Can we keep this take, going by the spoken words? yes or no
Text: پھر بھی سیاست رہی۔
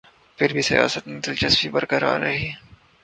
no